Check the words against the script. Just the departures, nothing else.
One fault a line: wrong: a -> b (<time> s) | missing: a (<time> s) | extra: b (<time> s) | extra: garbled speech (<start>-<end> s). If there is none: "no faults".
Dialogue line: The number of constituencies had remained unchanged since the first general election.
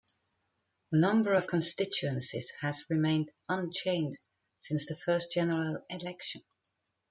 wrong: had -> has (2.6 s)